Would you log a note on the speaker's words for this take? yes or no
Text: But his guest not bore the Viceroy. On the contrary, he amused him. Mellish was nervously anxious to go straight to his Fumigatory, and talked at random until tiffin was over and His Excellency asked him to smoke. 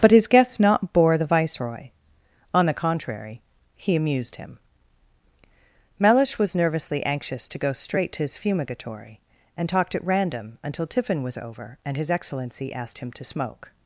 no